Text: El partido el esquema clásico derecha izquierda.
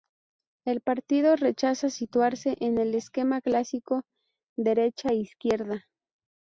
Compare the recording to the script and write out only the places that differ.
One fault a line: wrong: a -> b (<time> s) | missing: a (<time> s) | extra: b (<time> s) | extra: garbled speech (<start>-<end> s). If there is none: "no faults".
extra: rechaza situarse en (1.4 s)